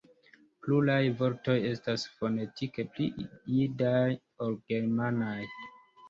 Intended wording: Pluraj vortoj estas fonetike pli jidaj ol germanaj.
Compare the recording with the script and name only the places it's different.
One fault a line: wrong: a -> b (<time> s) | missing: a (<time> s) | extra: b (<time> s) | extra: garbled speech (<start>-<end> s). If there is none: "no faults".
no faults